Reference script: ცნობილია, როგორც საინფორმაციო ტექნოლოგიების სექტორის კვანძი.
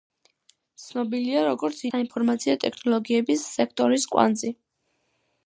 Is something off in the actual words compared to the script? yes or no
no